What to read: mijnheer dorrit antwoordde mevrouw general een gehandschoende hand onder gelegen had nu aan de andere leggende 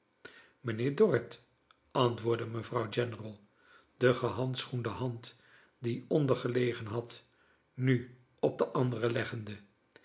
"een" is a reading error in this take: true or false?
true